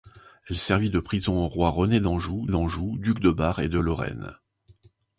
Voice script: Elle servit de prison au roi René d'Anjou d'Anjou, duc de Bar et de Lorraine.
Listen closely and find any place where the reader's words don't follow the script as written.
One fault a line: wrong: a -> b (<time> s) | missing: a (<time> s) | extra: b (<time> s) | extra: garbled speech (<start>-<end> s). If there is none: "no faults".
no faults